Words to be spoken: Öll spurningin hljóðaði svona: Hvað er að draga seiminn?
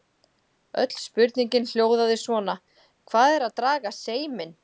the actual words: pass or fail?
pass